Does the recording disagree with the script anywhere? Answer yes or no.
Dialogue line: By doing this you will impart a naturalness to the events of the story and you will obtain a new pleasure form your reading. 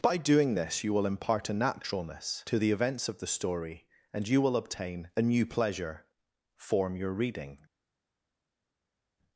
no